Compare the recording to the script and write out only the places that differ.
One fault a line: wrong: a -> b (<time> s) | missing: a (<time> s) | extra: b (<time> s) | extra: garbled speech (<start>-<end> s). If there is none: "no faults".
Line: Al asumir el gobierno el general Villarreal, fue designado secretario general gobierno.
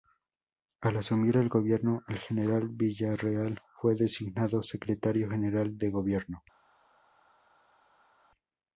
extra: de (5.8 s)